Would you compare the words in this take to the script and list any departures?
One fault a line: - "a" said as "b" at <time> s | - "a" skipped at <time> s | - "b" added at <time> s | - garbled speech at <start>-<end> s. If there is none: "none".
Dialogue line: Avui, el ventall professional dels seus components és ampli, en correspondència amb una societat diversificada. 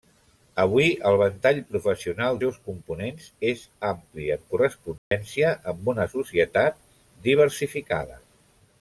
- "dels" skipped at 2.4 s